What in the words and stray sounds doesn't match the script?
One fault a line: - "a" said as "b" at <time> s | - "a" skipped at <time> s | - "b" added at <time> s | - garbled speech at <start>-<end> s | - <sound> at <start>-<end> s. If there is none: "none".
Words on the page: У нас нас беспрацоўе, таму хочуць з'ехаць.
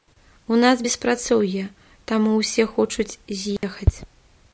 - "нас" skipped at 0.8 s
- "ўсе" added at 2.4 s
- dropout at 3.6-3.6 s